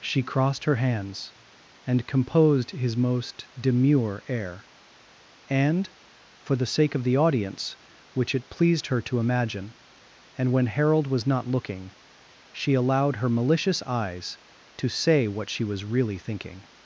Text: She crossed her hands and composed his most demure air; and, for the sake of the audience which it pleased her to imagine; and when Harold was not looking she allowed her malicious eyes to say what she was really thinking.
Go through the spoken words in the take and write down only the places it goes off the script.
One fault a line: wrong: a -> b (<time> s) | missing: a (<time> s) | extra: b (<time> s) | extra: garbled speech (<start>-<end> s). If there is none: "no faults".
no faults